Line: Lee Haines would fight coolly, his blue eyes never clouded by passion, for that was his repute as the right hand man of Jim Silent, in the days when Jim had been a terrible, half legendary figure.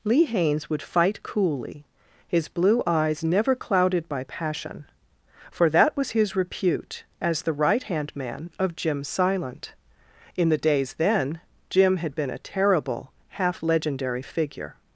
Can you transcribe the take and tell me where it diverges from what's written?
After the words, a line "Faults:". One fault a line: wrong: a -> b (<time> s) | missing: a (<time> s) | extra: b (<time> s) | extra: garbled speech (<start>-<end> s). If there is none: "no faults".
Lee Haines would fight coolly, his blue eyes never clouded by passion, for that was his repute as the right hand man of Jim Silent, in the days then Jim had been a terrible, half legendary figure.
Faults:
wrong: when -> then (10.9 s)